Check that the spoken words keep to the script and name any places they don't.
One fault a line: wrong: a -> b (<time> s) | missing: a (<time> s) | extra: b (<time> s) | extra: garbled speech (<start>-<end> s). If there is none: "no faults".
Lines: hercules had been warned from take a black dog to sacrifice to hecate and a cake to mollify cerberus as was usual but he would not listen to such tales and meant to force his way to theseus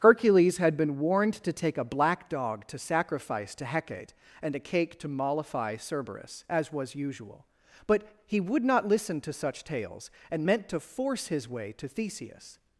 wrong: from -> to (1.4 s)